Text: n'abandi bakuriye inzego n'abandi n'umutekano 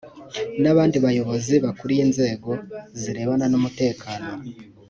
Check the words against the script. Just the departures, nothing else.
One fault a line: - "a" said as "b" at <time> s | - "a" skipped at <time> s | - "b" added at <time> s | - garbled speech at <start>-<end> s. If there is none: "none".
- "bayobozi" added at 1.1 s
- "n'abandi" said as "zirebana" at 3.0 s